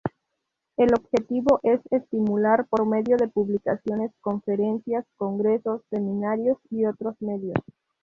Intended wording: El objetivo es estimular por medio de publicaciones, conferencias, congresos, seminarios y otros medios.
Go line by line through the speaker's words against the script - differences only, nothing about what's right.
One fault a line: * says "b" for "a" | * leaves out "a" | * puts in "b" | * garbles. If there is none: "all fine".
all fine